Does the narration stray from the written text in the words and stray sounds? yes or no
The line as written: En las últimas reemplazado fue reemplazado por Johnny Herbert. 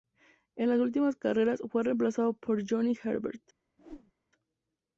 yes